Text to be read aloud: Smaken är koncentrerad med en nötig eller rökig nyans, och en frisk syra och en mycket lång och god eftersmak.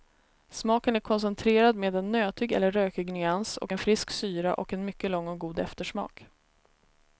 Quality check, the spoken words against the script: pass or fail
pass